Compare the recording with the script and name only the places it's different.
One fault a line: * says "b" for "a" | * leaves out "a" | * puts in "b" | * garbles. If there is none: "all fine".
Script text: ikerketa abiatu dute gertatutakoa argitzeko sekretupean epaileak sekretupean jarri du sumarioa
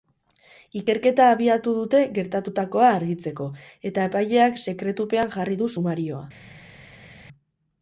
* says "eta" for "sekretupean"